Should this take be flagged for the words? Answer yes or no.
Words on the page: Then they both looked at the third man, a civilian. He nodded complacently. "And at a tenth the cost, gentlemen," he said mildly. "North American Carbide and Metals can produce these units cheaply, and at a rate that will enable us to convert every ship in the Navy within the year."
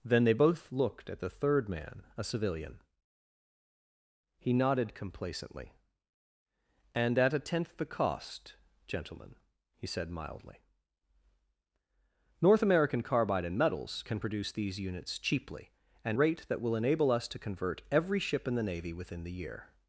yes